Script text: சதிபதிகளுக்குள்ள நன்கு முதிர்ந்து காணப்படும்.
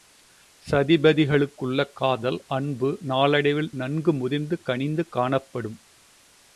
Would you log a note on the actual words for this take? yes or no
yes